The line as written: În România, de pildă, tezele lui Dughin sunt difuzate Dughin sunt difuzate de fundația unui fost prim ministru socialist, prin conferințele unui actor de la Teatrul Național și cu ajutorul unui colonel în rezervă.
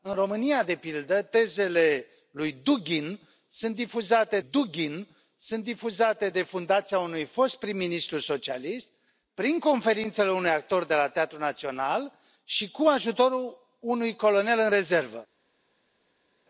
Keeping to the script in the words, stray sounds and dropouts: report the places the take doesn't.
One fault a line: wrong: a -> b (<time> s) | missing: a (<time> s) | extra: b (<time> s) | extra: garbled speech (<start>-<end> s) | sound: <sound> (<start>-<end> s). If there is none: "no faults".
no faults